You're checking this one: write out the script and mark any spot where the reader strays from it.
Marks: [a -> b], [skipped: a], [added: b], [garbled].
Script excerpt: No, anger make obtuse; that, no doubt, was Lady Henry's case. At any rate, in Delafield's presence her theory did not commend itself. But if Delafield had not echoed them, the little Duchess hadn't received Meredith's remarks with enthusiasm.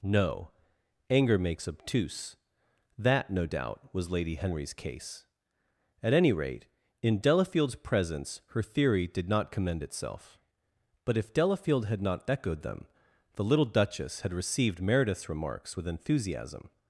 No, anger [make -> makes] obtuse; that, no doubt, was Lady Henry's case. At any rate, in Delafield's presence her theory did not commend itself. But if Delafield had not echoed them, the little Duchess [hadn't -> had] received Meredith's remarks with enthusiasm.